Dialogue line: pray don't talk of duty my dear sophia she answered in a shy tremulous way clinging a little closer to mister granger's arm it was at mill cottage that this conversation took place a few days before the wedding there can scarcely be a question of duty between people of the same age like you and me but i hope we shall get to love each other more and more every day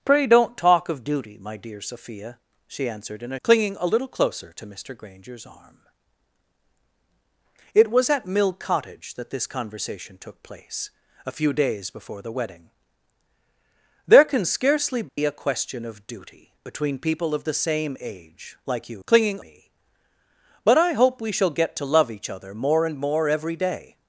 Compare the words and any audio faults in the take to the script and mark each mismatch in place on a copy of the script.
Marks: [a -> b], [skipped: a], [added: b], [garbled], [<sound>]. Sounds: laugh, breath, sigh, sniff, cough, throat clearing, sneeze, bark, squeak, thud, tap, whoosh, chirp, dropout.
pray don't talk of duty my dear sophia she answered in a [skipped: shy tremulous way] clinging a little closer to mister granger's arm it was at mill cottage that this conversation took place a few days before the wedding there can scarcely be [dropout] a question of duty between people of the same age like you [and -> clinging] me but i hope we shall get to love each other more and more every day